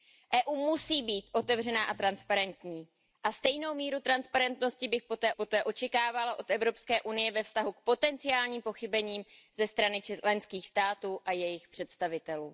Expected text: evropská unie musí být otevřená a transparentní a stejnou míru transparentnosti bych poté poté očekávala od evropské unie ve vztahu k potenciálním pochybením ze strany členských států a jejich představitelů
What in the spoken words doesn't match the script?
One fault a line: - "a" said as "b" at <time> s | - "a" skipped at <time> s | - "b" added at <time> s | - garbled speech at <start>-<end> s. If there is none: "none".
none